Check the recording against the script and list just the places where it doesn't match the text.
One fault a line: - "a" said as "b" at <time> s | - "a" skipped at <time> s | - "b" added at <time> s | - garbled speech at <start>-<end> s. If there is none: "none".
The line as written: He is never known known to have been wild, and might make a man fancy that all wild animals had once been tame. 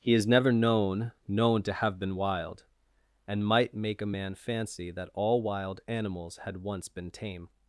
none